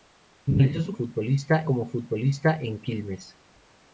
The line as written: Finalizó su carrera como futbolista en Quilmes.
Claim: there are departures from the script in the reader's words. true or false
true